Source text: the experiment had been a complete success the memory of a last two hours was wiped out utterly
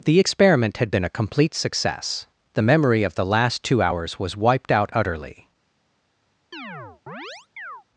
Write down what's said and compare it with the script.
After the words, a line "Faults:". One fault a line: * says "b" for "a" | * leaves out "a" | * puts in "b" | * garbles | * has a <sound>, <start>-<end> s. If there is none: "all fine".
the experiment had been a complete success the memory of the last two hours was wiped out utterly
Faults:
* says "the" for "a"
* has a chirp, 6.5-7.8 s